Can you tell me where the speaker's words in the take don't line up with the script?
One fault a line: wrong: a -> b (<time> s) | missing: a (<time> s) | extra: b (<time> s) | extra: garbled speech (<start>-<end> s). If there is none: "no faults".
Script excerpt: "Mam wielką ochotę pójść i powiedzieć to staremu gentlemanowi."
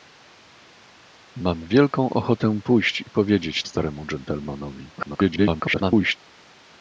missing: to (3.6 s)
extra: garbled speech (5.0-6.2 s)